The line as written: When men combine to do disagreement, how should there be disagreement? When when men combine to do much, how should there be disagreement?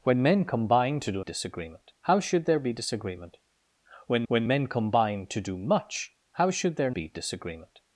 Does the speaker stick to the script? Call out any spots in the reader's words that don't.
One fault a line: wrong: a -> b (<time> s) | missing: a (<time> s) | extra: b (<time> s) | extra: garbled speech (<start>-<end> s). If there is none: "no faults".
no faults